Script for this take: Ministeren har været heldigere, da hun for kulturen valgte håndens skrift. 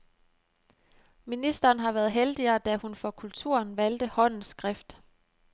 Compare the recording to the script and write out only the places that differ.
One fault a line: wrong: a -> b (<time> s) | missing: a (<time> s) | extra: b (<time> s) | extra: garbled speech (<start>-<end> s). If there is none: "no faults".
no faults